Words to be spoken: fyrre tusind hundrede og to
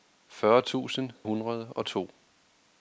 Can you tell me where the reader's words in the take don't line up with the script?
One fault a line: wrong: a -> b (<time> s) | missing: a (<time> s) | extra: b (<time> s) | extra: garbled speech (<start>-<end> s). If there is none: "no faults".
no faults